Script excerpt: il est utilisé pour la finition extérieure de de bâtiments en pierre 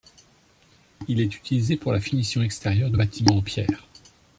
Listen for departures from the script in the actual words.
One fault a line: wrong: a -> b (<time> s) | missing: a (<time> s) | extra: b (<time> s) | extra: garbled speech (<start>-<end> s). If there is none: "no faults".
missing: de (3.0 s)